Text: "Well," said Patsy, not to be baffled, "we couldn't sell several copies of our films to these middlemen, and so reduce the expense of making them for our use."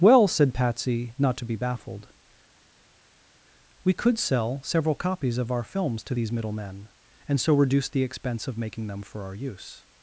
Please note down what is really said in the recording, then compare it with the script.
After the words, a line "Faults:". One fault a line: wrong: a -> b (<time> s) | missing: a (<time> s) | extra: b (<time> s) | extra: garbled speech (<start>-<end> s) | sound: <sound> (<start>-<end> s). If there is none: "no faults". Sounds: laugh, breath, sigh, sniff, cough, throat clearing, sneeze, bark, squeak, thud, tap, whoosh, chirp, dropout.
"Well," said Patsy, not to be baffled, "we could sell several copies of our films to these middlemen, and so reduce the expense of making them for our use."
Faults:
wrong: couldn't -> could (3.9 s)